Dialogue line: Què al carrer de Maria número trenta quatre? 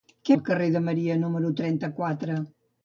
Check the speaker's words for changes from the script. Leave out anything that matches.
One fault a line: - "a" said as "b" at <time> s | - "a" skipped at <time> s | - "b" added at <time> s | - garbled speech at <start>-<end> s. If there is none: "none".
none